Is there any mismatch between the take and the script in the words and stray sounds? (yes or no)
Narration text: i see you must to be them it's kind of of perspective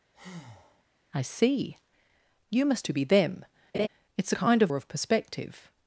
yes